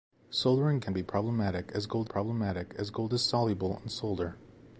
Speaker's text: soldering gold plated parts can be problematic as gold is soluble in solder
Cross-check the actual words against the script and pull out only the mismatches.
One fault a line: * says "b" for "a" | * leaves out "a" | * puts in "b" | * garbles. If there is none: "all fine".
* says "can be problematic as gold" for "gold plated parts can be"